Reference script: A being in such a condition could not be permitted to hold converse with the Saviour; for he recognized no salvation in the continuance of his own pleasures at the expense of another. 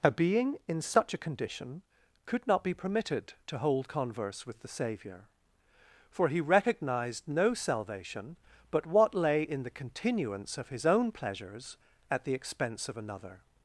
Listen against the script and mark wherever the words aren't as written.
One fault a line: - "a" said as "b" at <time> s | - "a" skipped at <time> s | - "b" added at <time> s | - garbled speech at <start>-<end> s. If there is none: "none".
- "but what lay" added at 8.7 s